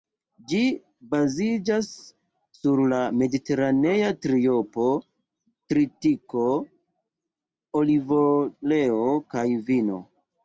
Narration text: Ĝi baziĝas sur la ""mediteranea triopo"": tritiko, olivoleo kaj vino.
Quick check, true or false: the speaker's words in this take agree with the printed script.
true